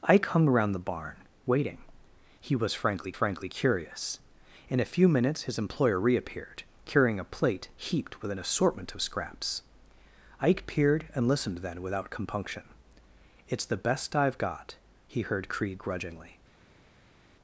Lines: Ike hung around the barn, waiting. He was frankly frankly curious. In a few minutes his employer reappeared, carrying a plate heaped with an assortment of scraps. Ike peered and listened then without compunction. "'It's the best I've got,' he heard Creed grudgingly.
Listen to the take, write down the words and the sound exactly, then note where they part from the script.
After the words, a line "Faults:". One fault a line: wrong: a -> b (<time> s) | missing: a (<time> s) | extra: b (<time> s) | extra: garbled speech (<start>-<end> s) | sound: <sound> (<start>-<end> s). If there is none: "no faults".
Ike hung around the barn, waiting. He was frankly frankly curious. In a few minutes his employer reappeared, carrying a plate heaped with an assortment of scraps. Ike peered and listened then without compunction. "'It's the best I've got,' he heard Creed grudgingly.
Faults:
no faults